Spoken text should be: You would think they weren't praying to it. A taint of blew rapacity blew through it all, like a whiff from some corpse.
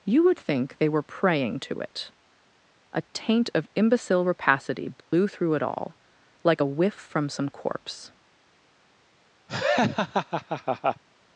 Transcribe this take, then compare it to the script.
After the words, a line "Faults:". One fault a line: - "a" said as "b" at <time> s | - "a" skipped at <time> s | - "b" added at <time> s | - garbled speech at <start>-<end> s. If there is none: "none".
You would think they were praying to it. A taint of imbecile rapacity blew through it all, like a whiff from some corpse.
Faults:
- "weren't" said as "were" at 0.9 s
- "blew" said as "imbecile" at 3.8 s